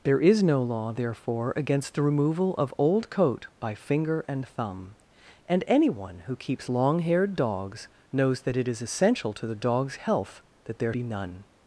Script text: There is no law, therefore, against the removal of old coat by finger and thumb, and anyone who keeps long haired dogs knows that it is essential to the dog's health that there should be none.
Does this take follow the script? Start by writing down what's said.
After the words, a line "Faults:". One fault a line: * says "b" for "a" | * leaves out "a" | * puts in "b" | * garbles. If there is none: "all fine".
There is no law, therefore, against the removal of old coat by finger and thumb, and anyone who keeps long haired dogs knows that it is essential to the dog's health that there be none.
Faults:
* leaves out "should"